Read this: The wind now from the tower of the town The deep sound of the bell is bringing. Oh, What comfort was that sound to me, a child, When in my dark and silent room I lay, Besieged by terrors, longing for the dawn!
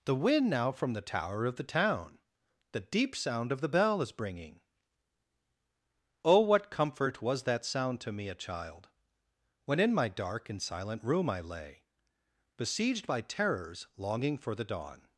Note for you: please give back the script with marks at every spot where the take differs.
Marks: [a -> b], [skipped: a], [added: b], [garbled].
The wind now from the tower of the town The deep sound of the bell is bringing. Oh, What comfort was that sound to me, a child, When in my dark and silent room I lay, Besieged by terrors, longing for the dawn!